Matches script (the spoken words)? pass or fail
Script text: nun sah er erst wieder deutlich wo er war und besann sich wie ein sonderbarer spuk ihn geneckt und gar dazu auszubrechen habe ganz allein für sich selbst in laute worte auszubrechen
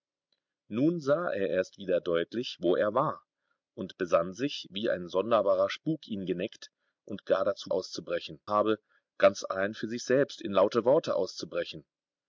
pass